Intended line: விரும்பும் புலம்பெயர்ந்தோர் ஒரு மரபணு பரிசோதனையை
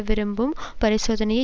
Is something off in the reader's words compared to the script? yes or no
yes